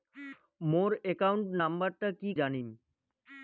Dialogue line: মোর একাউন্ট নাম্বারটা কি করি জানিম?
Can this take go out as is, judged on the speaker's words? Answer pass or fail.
fail